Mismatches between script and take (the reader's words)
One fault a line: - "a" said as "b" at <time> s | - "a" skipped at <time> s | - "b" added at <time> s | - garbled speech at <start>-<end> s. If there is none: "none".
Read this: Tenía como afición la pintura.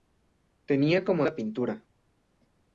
- "afición" skipped at 1.2 s